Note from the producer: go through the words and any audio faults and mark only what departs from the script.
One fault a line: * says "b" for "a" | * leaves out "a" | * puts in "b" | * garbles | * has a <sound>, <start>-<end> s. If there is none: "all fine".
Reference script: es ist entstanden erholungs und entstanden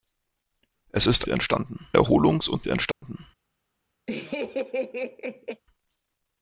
* has a dropout, 2.9-3.0 s
* has a laugh, 4.1-5.6 s